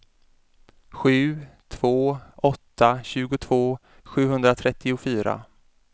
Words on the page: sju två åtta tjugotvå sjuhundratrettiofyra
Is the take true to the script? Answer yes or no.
yes